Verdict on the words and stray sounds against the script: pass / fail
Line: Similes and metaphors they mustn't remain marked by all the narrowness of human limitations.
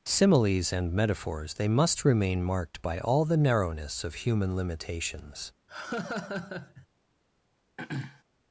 fail